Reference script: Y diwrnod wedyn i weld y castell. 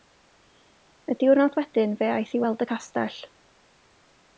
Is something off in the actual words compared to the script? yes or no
yes